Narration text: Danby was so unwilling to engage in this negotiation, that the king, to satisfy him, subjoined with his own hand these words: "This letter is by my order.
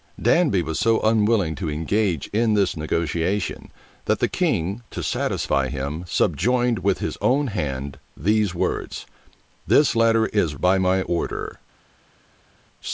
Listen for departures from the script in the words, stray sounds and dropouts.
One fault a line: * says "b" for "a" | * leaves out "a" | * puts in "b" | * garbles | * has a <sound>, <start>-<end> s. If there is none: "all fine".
all fine